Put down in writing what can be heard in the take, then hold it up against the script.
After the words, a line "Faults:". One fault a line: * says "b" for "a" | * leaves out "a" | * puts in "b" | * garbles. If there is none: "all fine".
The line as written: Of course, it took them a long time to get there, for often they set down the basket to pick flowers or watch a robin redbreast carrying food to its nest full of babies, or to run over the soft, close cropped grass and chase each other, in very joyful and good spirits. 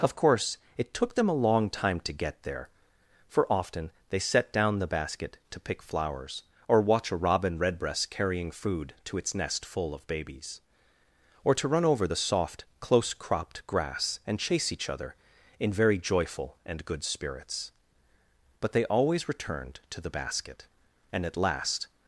Of course, it took them a long time to get there, for often they set down the basket to pick flowers or watch a robin redbreast carrying food to its nest full of babies, or to run over the soft, close cropped grass and chase each other, in very joyful and good spirits. But they always returned to the basket, and at last
Faults:
* puts in "But they always returned to the basket and at last"